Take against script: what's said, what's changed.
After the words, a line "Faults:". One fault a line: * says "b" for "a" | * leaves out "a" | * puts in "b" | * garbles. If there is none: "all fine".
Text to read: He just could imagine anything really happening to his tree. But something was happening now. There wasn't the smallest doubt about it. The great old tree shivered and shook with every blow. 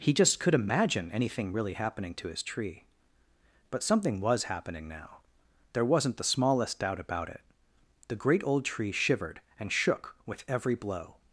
He just could imagine anything really happening to his tree. But something was happening now. There wasn't the smallest doubt about it. The great old tree shivered and shook with every blow.
Faults:
all fine